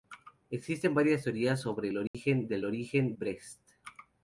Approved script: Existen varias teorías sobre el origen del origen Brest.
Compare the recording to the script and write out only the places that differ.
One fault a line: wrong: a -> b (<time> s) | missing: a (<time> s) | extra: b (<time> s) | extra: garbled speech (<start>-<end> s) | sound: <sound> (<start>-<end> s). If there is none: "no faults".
sound: dropout (2.1-2.1 s)